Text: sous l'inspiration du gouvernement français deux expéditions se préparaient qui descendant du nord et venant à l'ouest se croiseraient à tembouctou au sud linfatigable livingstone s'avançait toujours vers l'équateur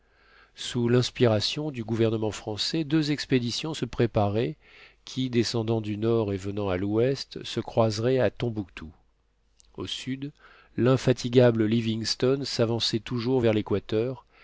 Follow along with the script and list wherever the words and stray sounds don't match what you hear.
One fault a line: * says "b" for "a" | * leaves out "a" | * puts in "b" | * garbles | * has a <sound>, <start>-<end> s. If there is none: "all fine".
all fine